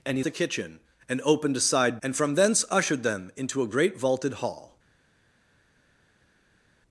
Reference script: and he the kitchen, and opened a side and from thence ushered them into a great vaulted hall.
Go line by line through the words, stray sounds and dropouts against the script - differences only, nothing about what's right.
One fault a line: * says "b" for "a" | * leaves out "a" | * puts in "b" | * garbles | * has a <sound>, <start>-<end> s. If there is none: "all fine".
all fine